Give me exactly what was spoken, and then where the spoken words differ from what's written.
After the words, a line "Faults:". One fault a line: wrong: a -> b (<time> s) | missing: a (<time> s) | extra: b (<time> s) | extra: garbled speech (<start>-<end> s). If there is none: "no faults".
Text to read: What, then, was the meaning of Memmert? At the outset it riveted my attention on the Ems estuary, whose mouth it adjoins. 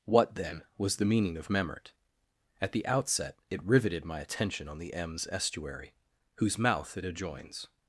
What, then, was the meaning of Memmert? At the outset it riveted my attention on the Ems estuary, whose mouth it adjoins.
Faults:
no faults